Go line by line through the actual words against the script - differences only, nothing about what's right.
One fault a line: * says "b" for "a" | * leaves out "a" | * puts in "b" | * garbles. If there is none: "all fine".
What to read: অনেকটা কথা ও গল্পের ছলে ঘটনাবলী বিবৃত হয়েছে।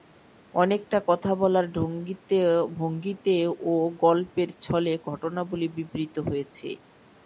* puts in "বলার ভঙ্গিতে"